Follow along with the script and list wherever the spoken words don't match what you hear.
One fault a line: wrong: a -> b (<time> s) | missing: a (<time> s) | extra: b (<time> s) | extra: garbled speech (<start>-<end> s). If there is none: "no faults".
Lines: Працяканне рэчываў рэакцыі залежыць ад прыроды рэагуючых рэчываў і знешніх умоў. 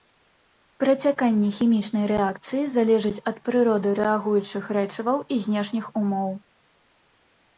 wrong: рэчываў -> хімічнай (1.6 s)